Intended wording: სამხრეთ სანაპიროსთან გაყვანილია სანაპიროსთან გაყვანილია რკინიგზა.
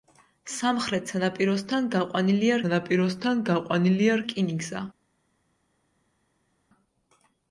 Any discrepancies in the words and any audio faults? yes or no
no